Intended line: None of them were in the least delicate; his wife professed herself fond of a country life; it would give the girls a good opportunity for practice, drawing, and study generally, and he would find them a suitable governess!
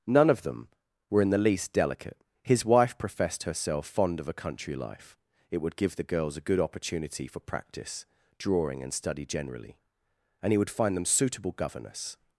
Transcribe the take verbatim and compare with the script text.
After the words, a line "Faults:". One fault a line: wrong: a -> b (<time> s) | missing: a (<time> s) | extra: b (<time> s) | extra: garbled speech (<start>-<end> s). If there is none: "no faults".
None of them were in the least delicate; his wife professed herself fond of a country life; it would give the girls a good opportunity for practice, drawing, and study generally, and he would find them suitable governess!
Faults:
missing: a (11.1 s)